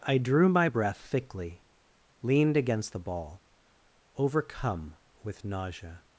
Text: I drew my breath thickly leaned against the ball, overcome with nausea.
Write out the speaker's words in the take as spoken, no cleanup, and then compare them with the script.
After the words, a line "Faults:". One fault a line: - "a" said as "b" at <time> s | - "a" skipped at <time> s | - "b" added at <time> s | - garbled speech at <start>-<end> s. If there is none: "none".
I drew my breath thickly leaned against the ball, overcome with nausea.
Faults:
none